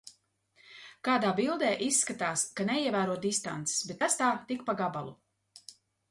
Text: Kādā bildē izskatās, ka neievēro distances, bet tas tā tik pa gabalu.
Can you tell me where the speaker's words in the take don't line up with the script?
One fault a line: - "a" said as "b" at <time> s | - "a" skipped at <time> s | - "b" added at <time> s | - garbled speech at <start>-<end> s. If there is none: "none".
none